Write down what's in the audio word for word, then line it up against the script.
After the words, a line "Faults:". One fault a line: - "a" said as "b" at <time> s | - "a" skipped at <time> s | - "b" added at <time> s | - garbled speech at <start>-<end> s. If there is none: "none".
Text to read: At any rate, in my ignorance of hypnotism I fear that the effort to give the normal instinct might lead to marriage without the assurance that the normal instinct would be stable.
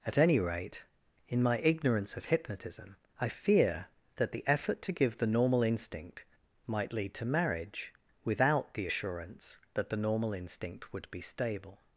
At any rate, in my ignorance of hypnotism I fear that the effort to give the normal instinct might lead to marriage without the assurance that the normal instinct would be stable.
Faults:
none